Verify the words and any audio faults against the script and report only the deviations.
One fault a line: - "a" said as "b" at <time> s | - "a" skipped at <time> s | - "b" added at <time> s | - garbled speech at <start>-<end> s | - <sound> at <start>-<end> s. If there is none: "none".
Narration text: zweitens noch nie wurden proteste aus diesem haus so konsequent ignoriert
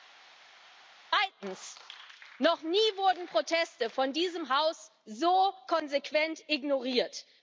- "aus" said as "von" at 3.9 s